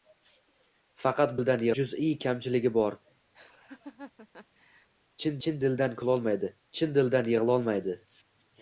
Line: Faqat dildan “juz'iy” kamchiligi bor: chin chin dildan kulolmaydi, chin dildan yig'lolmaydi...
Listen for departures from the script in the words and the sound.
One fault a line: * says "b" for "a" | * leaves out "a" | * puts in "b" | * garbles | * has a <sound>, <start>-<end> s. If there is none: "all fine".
* has a laugh, 3.3-4.9 s